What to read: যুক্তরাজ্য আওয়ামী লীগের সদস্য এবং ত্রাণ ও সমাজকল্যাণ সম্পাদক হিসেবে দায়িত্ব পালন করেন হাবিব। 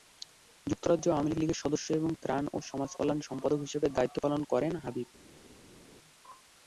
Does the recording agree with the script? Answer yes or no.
yes